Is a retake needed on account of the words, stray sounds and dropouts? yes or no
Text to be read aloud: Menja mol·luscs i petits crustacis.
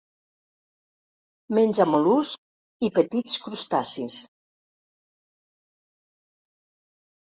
no